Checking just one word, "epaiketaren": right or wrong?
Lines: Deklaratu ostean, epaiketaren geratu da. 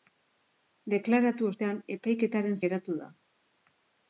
right